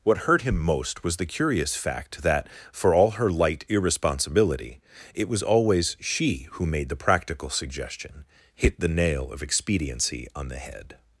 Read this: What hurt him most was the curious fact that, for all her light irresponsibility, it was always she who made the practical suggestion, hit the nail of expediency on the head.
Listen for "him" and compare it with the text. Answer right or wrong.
right